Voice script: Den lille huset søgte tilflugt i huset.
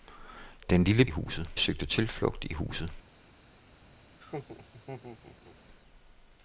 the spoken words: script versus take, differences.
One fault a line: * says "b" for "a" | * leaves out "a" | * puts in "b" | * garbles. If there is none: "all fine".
all fine